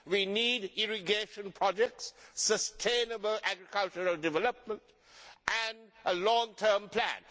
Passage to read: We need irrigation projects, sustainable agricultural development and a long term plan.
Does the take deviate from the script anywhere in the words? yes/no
no